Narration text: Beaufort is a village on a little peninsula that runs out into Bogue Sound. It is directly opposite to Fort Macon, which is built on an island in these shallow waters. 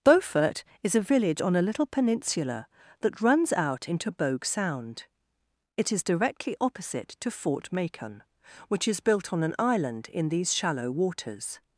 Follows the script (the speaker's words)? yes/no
yes